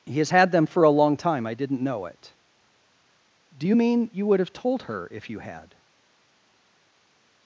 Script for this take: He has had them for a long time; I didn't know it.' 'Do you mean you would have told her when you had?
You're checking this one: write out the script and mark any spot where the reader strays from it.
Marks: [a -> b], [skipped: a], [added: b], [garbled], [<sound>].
He has had them for a long time; I didn't know it.' 'Do you mean you would have told her [when -> if] you had?